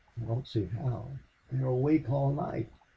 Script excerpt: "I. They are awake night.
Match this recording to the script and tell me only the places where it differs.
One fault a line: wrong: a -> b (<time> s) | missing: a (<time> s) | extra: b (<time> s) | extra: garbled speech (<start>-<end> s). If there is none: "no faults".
extra: don't see how (0.2 s)
extra: all (2.1 s)